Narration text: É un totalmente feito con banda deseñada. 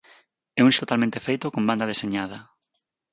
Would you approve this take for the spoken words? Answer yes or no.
yes